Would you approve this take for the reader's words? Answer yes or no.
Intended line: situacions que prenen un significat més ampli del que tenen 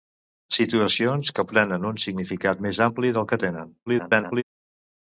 no